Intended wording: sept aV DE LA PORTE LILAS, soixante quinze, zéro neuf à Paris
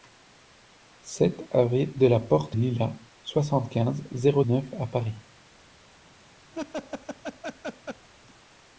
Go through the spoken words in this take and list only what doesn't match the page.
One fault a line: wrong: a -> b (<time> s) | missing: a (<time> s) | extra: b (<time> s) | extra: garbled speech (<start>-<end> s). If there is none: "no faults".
no faults